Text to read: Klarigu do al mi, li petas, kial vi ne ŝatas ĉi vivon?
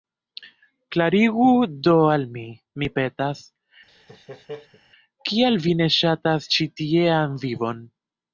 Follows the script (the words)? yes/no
no